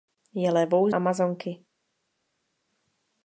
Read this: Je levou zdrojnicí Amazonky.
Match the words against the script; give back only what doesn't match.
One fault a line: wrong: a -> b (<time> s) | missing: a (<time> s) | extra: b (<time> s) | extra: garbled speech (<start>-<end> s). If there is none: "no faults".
missing: zdrojnicí (0.9 s)